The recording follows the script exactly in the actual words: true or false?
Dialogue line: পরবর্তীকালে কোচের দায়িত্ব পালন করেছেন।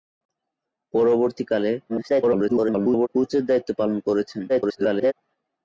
false